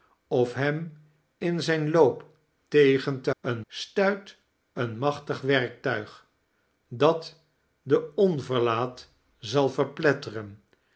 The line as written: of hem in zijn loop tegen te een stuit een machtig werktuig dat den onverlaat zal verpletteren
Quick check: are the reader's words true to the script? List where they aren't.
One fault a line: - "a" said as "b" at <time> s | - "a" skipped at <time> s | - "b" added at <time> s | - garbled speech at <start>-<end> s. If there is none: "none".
none